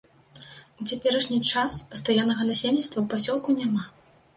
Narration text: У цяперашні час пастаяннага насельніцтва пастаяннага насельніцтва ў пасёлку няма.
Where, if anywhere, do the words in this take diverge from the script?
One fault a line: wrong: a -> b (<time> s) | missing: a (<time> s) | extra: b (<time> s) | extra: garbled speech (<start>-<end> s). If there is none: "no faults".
missing: пастаяннага насельніцтва (3.0 s)